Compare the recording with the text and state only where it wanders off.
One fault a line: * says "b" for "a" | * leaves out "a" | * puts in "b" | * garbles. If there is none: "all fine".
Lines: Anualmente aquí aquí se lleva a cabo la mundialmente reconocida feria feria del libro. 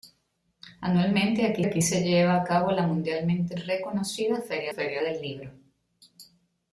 all fine